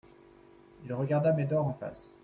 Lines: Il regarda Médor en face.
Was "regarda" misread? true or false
false